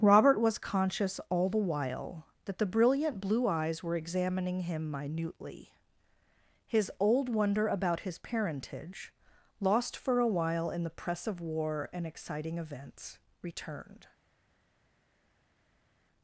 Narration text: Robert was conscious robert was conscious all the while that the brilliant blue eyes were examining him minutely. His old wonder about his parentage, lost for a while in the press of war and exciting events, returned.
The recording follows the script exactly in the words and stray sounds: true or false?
false